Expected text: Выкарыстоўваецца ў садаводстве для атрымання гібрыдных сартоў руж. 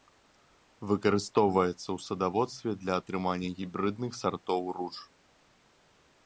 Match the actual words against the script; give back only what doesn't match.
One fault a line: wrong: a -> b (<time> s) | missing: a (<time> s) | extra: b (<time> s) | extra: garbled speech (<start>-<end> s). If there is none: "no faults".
no faults